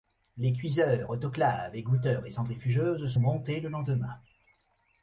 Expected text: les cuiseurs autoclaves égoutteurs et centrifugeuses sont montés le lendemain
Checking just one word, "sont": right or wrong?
wrong